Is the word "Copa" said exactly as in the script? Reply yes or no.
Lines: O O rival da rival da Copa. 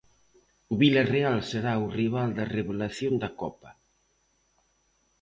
yes